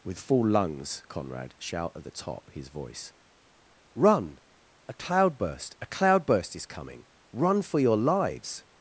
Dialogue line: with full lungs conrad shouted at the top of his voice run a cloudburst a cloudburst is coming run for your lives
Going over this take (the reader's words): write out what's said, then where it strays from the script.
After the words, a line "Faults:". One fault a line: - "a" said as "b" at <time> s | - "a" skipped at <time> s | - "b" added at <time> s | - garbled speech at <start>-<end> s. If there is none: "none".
with full lungs conrad shout at the top his voice run a cloudburst a cloudburst is coming run for your lives
Faults:
- "shouted" said as "shout" at 1.6 s
- "of" skipped at 2.5 s